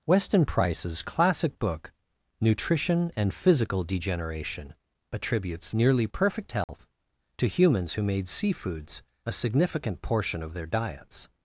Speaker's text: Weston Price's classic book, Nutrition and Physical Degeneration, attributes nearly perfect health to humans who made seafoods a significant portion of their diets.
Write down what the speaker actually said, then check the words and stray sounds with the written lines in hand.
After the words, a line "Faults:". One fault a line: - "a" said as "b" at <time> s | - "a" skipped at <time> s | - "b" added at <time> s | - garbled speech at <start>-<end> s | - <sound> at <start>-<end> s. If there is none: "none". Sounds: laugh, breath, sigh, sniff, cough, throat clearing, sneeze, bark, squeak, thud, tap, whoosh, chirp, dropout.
Weston Price's classic book, Nutrition and Physical Degeneration, attributes nearly perfect health to humans who made seafoods a significant portion of their diets.
Faults:
- dropout at 6.6-6.7 s